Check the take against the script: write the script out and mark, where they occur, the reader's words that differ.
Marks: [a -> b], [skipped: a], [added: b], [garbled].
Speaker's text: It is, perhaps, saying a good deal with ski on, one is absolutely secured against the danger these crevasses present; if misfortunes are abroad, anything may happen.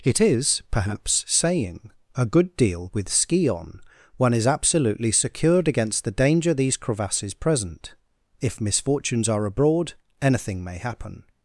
It is, perhaps, saying a good deal with ski on, one is absolutely secured against the danger these crevasses present; if misfortunes are abroad, anything may happen.